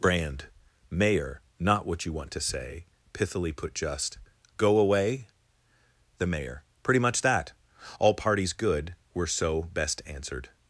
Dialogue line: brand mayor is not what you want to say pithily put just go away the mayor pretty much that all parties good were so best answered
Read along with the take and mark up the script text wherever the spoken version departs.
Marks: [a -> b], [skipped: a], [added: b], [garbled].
brand mayor [skipped: is] not what you want to say pithily put just go away the mayor pretty much that all parties good were so best answered